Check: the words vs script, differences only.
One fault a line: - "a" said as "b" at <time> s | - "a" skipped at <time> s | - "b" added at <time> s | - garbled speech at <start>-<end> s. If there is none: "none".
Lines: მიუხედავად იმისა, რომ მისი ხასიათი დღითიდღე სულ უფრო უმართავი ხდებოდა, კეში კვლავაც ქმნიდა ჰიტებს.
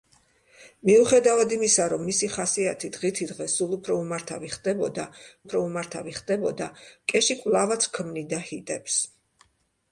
- "უფრო უმართავი ხდებოდა" added at 5.4 s